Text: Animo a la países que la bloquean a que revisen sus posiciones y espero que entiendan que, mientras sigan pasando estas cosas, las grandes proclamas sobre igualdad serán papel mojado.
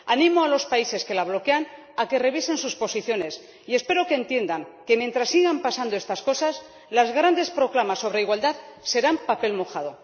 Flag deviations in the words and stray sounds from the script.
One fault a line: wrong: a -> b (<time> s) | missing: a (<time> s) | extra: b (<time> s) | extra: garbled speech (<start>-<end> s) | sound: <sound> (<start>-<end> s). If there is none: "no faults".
wrong: la -> los (0.5 s)